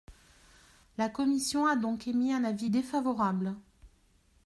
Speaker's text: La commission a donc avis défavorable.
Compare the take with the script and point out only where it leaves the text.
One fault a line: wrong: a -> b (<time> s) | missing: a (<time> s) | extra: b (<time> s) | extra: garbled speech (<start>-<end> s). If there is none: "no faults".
extra: émis un (2.1 s)